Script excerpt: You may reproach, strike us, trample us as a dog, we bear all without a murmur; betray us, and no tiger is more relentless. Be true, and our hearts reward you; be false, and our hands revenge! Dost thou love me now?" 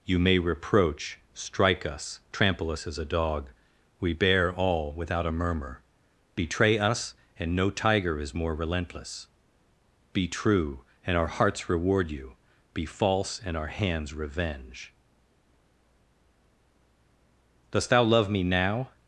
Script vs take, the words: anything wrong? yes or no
no